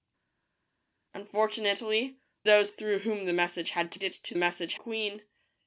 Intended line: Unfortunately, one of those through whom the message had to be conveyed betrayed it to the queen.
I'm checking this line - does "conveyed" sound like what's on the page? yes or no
no